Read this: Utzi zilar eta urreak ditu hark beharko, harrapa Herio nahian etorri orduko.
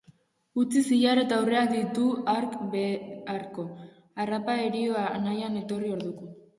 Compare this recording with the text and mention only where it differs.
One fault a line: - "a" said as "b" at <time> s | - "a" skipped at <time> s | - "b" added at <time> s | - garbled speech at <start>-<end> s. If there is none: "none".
none